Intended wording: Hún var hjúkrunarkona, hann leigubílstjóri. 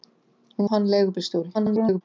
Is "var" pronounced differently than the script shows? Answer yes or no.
yes